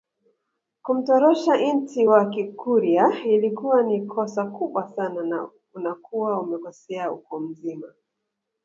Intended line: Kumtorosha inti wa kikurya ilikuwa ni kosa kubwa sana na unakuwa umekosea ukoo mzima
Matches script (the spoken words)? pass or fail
pass